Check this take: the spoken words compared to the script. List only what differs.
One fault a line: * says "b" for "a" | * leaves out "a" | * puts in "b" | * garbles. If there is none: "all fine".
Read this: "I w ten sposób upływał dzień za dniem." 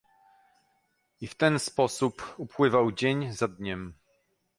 all fine